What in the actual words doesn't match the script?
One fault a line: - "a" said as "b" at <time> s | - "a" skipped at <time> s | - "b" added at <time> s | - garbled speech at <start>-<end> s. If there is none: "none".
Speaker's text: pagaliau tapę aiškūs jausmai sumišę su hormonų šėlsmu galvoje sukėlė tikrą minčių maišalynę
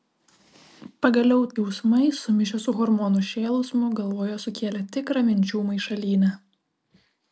- "tapę aiškūs" skipped at 1.4 s